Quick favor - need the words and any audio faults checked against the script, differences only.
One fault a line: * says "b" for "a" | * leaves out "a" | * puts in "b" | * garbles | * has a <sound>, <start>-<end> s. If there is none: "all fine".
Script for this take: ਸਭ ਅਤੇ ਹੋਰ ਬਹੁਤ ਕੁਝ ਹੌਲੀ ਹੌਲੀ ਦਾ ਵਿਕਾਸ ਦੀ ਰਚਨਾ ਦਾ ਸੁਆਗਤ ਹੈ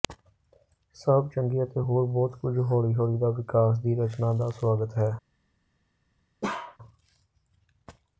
* puts in "ਚੰਗੇ"
* has a bark, 6.4-6.8 s